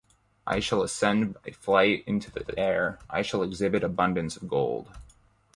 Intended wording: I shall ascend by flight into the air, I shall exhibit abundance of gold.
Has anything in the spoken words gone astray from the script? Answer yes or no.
yes